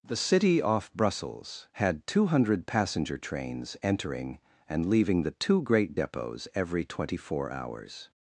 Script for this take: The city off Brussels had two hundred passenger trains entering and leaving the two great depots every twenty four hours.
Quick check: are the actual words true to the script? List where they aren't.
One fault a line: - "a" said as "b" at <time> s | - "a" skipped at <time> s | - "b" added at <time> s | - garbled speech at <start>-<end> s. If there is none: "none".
none